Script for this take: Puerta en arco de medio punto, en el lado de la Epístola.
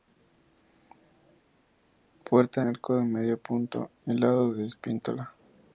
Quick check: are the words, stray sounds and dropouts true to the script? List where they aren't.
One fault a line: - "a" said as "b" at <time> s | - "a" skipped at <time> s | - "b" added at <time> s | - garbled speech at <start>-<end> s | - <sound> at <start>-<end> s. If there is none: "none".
- "en" skipped at 2.7 s
- "en" skipped at 3.9 s